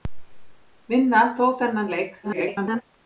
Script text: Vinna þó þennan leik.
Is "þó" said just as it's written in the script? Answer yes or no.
yes